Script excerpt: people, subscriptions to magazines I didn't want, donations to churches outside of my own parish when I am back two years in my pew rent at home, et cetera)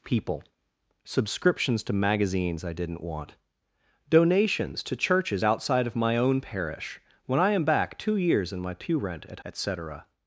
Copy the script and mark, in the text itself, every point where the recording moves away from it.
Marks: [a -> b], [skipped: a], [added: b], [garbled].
people, subscriptions to magazines I didn't want, donations to churches outside of my own parish when I am back two years in my pew rent at [skipped: home,] et cetera)